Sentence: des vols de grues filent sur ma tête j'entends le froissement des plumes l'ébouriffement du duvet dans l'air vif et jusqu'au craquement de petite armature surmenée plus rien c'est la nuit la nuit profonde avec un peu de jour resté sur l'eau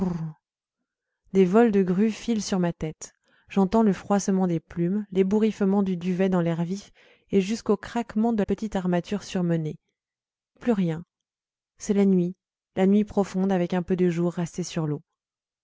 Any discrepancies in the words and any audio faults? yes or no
no